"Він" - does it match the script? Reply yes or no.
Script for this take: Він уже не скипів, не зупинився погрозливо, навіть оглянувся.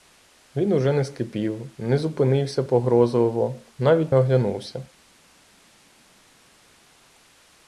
yes